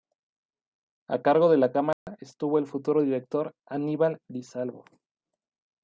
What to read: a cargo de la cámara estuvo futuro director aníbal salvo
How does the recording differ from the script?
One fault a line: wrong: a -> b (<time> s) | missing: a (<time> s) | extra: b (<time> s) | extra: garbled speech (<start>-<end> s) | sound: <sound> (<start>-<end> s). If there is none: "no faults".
sound: dropout (1.9-2.1 s)
extra: el (2.6 s)
extra: di (4.3 s)